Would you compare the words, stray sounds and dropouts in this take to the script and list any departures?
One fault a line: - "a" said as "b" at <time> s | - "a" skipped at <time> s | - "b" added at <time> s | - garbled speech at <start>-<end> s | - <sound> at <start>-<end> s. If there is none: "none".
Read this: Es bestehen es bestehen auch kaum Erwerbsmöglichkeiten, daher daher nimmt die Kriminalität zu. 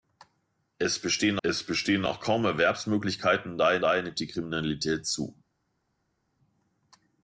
none